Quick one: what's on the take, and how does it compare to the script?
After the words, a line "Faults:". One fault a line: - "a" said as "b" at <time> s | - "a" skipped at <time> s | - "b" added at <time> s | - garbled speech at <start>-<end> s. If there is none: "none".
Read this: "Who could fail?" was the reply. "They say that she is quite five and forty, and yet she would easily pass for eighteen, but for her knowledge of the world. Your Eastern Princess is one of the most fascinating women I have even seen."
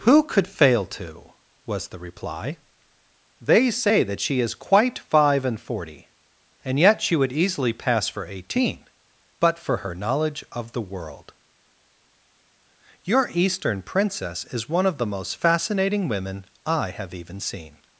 "Who could fail to?" was the reply. "They say that she is quite five and forty, and yet she would easily pass for eighteen, but for her knowledge of the world. Your Eastern Princess is one of the most fascinating women I have even seen."
Faults:
- "to" added at 1.0 s